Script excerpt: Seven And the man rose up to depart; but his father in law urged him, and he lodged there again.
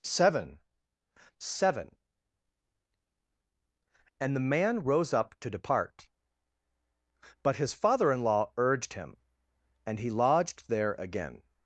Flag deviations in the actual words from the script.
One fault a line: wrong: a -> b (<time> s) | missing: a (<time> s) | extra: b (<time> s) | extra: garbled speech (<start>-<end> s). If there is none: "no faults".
extra: seven (1.4 s)